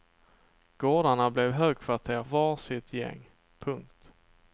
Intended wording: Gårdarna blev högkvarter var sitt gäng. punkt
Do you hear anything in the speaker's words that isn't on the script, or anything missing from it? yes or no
no